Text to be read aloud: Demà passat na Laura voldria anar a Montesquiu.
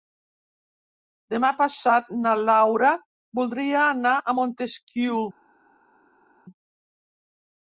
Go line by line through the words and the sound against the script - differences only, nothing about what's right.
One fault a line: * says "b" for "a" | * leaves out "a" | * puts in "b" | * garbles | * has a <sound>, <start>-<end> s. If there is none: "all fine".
all fine